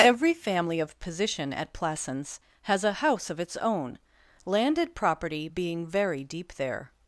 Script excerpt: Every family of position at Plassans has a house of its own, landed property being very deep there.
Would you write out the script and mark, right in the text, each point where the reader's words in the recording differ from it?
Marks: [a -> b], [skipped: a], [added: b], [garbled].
Every family of position at Plassans has a house of its own, landed property being very deep there.